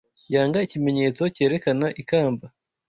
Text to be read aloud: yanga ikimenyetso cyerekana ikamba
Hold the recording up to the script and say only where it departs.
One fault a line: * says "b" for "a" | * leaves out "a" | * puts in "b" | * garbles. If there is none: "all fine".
all fine